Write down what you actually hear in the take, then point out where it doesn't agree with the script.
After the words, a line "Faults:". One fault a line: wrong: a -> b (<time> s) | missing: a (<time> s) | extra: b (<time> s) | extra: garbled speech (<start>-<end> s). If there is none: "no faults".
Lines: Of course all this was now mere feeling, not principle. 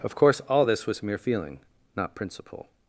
Of course all this was mere feeling, not principle.
Faults:
missing: now (1.0 s)